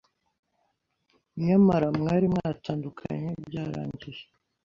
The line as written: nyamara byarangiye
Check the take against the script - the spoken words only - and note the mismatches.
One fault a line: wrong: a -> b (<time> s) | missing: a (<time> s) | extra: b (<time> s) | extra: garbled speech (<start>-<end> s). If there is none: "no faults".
extra: mwari mwatandukanye (2.0 s)